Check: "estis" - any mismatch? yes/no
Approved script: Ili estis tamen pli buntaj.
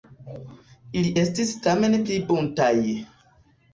no